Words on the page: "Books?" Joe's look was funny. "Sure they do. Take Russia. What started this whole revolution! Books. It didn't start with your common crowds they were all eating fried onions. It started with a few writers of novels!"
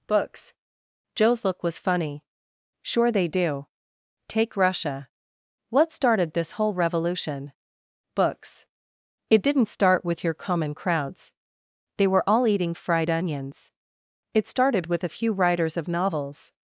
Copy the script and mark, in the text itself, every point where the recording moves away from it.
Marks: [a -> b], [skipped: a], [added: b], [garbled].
"Books?" Joe's look was funny. "Sure they do. Take Russia. What started this whole revolution! Books. It didn't start with your common crowds they were all eating fried onions. It started with a few writers of novels!"